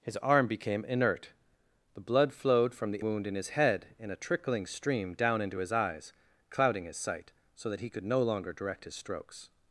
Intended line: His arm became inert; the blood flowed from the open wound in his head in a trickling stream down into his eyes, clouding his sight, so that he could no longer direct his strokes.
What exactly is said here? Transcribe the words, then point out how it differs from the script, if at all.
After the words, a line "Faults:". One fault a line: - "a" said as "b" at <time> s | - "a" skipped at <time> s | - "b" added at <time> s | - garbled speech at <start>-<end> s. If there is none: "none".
His arm became inert; the blood flowed from the wound in his head in a trickling stream down into his eyes, clouding his sight, so that he could no longer direct his strokes.
Faults:
- "open" skipped at 3.0 s